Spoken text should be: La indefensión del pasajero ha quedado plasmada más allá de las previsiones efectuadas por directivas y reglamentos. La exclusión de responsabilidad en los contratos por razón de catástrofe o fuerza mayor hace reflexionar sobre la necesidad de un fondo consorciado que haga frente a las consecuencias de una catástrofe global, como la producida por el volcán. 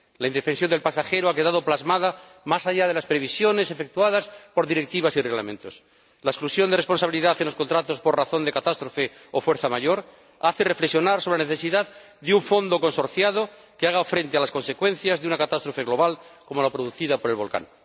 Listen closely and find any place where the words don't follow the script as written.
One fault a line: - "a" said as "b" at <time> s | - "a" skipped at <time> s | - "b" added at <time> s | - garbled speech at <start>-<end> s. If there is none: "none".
none